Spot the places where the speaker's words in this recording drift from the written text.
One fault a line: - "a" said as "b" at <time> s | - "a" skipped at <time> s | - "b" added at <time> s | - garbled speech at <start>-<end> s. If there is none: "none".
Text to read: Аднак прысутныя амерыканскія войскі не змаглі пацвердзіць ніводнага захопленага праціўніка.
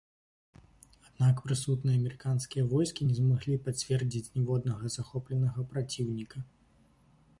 none